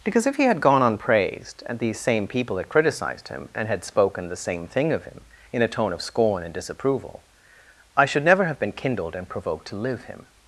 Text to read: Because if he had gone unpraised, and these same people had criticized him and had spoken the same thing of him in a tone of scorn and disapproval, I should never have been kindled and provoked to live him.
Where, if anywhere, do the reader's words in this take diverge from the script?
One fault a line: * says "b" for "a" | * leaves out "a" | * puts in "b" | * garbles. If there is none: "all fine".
all fine